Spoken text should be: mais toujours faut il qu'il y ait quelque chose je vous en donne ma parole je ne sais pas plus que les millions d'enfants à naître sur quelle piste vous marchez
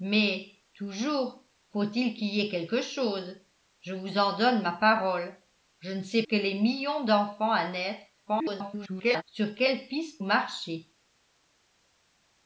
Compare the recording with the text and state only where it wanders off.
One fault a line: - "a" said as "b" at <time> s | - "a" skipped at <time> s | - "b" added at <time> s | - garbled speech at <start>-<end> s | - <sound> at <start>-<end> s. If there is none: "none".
- "pas plus" skipped at 6.2 s
- garbled speech at 8.3-9.2 s
- "vous" skipped at 10.2 s